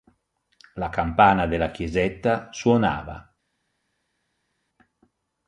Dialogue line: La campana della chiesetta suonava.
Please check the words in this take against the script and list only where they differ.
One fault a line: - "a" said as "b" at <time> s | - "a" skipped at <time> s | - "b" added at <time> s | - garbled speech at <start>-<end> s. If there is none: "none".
none